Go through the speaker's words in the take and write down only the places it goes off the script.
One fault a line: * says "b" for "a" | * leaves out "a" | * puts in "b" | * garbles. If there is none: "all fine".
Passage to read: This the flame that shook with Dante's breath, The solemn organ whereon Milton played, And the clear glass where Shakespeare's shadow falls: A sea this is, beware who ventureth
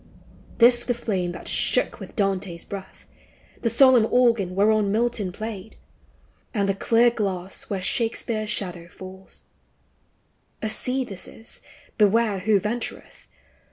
all fine